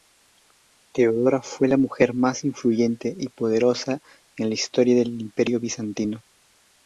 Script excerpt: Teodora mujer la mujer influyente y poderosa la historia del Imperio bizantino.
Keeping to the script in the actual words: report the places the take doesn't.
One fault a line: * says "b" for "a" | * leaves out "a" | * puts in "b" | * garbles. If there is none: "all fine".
* says "fue" for "mujer"
* puts in "más"
* puts in "en"